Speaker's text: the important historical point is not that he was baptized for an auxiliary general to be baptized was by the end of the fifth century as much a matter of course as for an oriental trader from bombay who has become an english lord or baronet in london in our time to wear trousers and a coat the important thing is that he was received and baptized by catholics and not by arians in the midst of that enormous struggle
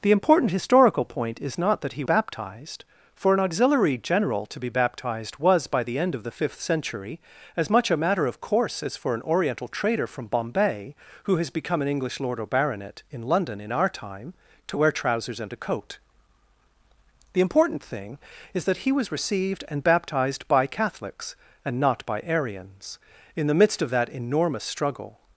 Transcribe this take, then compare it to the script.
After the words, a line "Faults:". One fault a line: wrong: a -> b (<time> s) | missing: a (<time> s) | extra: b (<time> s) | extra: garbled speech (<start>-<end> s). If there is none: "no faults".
the important historical point is not that he baptized for an auxiliary general to be baptized was by the end of the fifth century as much a matter of course as for an oriental trader from bombay who has become an english lord or baronet in london in our time to wear trousers and a coat the important thing is that he was received and baptized by catholics and not by arians in the midst of that enormous struggle
Faults:
missing: was (2.0 s)